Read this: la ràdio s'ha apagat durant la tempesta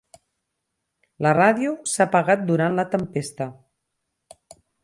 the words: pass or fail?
pass